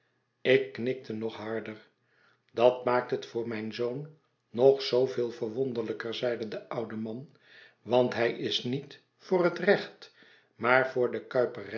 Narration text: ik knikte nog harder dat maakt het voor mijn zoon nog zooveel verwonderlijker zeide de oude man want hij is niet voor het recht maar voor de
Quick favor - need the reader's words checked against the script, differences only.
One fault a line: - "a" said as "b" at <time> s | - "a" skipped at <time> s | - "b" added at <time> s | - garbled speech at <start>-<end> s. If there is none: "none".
none